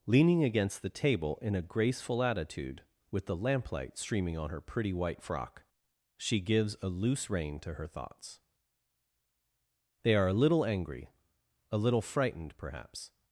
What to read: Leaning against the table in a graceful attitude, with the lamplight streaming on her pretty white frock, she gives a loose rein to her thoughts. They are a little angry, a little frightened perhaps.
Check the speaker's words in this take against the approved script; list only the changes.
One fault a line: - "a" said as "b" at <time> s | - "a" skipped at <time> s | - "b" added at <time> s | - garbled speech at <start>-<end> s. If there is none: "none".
none